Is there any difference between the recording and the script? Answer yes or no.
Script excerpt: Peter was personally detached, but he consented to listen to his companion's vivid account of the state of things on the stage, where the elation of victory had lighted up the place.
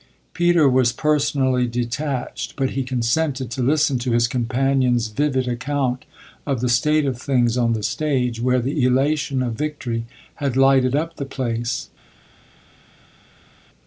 no